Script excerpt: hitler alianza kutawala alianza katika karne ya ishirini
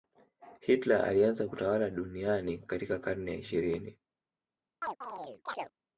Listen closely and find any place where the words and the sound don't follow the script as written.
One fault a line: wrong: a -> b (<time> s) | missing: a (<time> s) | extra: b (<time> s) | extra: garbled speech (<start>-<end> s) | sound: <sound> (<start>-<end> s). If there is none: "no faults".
wrong: alianza -> duniani (1.9 s)
sound: chirp (4.8-5.7 s)